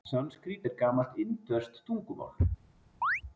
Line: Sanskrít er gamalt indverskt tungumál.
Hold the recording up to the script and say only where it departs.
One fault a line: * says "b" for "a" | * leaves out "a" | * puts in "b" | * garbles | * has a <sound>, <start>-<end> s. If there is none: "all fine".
* has a chirp, 3.0-3.2 s